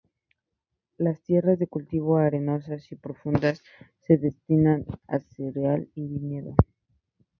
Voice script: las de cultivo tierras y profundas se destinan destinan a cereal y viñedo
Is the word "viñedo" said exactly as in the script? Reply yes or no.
yes